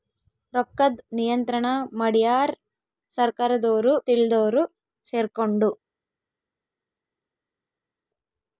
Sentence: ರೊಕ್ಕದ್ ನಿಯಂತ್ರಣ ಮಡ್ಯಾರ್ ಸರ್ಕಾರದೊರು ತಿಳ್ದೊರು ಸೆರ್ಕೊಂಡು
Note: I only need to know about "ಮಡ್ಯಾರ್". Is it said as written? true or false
true